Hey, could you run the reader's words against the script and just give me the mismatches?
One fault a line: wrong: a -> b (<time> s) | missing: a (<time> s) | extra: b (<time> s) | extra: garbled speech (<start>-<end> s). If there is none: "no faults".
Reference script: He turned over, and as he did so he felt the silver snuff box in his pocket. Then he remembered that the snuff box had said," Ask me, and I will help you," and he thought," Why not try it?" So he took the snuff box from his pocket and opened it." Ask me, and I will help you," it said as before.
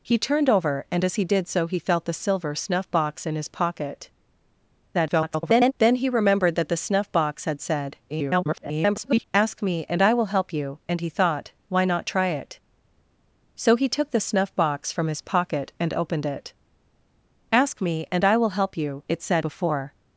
extra: garbled speech (4.9-5.7 s)
extra: garbled speech (8.1-9.3 s)
missing: as (19.4 s)